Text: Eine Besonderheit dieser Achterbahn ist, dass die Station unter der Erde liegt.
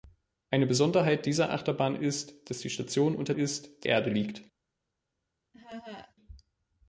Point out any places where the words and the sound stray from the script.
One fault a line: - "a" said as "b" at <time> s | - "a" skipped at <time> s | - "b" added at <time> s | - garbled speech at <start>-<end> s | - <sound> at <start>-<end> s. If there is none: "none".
- "der" said as "ist" at 3.3 s
- laugh at 5.5-6.1 s